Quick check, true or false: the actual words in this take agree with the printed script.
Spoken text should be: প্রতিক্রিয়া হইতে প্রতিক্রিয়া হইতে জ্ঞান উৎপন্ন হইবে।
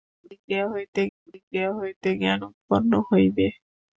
true